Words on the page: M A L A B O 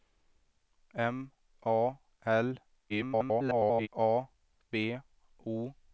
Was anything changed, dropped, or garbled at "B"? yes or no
no